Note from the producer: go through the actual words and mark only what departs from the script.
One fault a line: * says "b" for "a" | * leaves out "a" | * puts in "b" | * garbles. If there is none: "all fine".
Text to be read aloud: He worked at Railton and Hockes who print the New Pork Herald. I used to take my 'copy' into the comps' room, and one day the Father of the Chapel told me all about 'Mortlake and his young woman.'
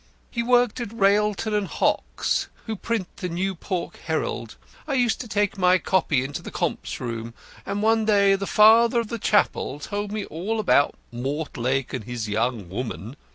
all fine